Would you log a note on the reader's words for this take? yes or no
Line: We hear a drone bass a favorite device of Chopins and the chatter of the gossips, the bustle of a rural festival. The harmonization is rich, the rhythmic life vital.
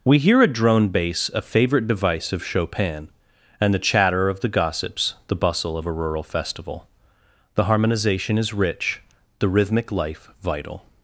yes